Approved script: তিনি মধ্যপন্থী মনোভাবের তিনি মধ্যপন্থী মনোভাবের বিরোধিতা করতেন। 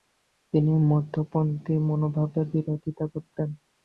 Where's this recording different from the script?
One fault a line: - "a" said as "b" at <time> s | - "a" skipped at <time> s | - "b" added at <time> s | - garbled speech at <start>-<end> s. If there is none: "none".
- "তিনি মধ্যপন্থী মনোভাবের" skipped at 2.5 s